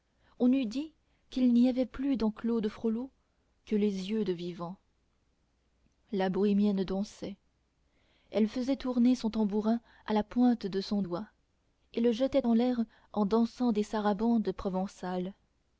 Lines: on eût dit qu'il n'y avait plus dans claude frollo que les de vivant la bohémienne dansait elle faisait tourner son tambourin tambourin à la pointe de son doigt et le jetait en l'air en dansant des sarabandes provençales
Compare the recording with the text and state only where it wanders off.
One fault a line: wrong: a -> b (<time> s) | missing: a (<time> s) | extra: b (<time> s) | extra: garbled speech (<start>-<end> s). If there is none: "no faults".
extra: yeux (4.1 s)
missing: tambourin (9.8 s)